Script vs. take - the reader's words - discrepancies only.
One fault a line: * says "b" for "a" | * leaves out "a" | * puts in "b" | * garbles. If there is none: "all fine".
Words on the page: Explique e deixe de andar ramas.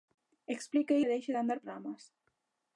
all fine